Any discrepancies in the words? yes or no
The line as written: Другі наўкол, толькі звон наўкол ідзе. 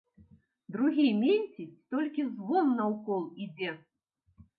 yes